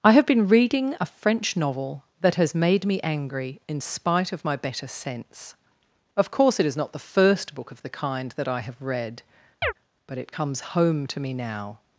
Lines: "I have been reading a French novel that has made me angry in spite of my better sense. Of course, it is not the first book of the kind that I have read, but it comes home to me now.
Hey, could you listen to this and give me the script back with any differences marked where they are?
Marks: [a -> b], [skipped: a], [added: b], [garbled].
"I have been reading a French novel that has made me angry in spite of my better sense. Of course, it is not the first book of the kind that I have read, but it comes home to me now.